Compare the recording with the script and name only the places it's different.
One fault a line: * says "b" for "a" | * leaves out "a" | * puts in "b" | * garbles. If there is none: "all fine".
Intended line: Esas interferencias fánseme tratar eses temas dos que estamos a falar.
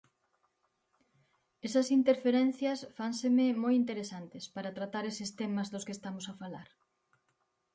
* puts in "moi interesantes para"